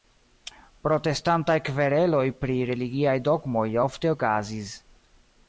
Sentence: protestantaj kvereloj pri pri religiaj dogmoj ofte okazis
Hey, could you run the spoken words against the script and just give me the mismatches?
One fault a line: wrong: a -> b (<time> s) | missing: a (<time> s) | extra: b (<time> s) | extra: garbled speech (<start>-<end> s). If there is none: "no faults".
missing: pri (2.6 s)